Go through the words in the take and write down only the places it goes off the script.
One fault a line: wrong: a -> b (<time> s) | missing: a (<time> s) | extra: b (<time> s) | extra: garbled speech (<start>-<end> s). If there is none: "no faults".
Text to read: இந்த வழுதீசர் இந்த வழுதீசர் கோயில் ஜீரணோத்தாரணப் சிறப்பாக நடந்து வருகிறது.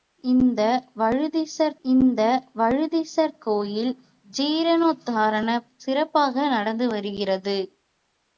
no faults